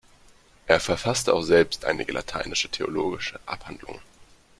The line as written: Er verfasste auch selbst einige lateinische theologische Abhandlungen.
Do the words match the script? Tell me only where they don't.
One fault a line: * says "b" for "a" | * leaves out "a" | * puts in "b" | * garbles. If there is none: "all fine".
all fine